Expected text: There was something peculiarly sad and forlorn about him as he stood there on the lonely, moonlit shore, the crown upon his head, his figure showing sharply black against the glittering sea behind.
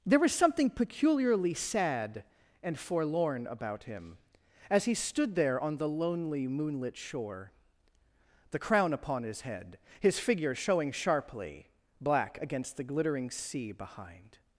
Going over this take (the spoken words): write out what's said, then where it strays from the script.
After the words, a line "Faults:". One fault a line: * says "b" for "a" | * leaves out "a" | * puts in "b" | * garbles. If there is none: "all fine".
There was something peculiarly sad and forlorn about him as he stood there on the lonely, moonlit shore, the crown upon his head, his figure showing sharply black against the glittering sea behind.
Faults:
all fine